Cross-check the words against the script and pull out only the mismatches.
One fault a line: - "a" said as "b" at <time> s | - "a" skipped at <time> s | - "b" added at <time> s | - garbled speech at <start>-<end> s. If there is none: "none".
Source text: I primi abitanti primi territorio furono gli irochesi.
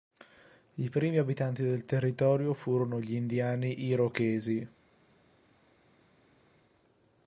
- "primi" said as "del" at 1.6 s
- "indiani" added at 3.1 s